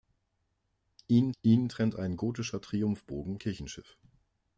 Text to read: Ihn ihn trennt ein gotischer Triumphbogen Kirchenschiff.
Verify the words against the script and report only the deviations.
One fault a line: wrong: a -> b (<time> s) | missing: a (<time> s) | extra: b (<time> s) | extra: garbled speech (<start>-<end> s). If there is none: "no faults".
no faults